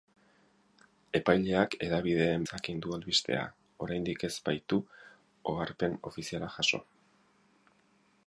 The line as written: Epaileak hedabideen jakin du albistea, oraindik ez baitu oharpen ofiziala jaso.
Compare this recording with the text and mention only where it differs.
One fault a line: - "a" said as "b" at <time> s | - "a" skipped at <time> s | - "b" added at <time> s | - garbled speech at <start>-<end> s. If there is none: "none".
none